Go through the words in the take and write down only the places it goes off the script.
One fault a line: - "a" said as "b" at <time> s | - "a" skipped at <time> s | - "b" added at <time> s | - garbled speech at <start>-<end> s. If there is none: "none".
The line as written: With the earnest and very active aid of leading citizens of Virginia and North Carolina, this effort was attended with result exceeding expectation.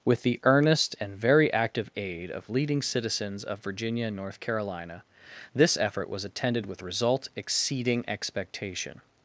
none